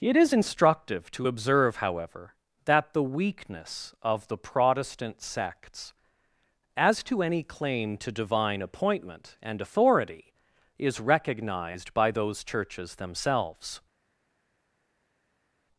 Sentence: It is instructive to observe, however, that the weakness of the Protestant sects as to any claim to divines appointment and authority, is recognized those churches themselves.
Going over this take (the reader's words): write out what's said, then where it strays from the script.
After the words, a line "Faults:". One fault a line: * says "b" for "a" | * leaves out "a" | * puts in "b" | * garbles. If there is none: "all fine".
It is instructive to observe, however, that the weakness of the Protestant sects as to any claim to divine appointment and authority, is recognized by those churches themselves.
Faults:
* says "divine" for "divines"
* puts in "by"